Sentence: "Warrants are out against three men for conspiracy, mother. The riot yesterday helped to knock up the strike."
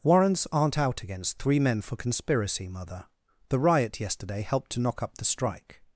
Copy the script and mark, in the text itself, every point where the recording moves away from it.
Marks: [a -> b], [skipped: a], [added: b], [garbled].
"Warrants [are -> aren't] out against three men for conspiracy, mother. The riot yesterday helped to knock up the strike."